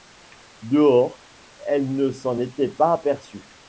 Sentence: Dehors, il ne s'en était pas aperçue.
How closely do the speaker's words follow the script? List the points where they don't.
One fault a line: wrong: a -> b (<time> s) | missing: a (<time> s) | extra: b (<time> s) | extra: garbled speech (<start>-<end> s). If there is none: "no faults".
wrong: il -> elle (1.7 s)